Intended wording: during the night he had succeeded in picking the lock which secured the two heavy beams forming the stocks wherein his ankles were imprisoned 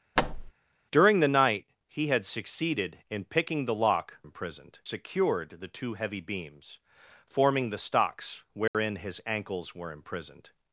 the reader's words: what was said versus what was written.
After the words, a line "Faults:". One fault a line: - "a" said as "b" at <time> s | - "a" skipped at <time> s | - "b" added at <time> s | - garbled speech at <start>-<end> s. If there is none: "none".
during the night he had succeeded in picking the lock imprisoned secured the two heavy beams forming the stocks wherein his ankles were imprisoned
Faults:
- "which" said as "imprisoned" at 4.2 s